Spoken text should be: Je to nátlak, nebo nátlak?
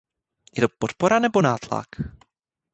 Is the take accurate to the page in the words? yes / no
no